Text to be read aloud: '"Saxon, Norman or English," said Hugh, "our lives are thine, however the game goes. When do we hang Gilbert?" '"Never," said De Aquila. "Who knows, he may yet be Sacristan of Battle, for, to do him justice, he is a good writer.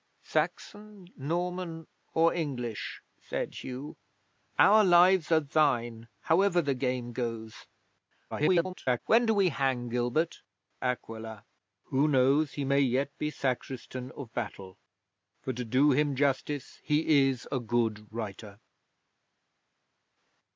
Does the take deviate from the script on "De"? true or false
true